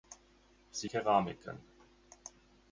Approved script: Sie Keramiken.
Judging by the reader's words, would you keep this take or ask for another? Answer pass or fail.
pass